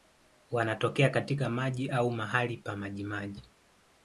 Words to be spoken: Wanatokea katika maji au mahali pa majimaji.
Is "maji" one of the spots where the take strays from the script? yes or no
no